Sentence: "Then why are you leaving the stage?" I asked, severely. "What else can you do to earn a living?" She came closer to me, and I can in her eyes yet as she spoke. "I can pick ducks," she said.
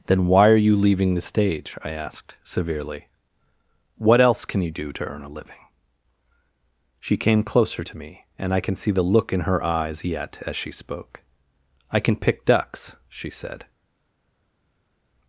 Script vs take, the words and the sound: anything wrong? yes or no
yes